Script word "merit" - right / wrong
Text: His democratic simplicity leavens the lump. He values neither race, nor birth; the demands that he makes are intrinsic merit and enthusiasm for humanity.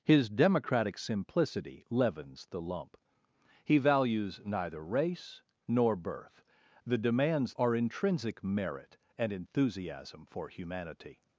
right